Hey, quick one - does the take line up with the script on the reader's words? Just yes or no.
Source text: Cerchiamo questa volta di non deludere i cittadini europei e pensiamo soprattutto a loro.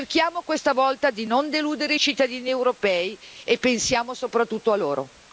yes